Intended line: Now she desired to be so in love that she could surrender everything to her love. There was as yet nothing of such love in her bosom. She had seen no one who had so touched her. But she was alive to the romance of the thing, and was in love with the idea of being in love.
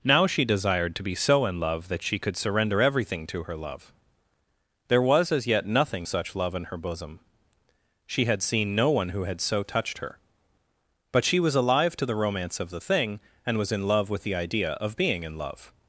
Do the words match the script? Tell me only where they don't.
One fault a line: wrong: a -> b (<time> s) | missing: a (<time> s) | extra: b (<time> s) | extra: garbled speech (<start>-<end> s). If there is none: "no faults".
missing: of (6.1 s)